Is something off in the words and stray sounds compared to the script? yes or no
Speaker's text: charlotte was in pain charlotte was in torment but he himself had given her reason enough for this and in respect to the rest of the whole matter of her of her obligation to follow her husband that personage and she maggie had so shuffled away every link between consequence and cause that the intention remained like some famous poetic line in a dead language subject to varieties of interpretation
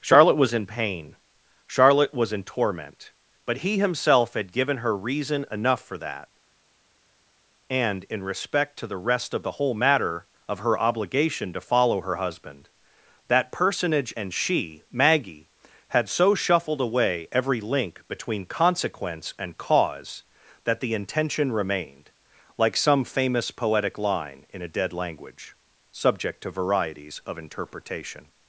yes